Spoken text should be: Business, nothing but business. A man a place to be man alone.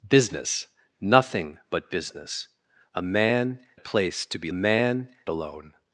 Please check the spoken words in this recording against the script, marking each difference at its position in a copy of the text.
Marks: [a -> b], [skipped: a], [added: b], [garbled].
Business, nothing but business. A man a place to be man alone.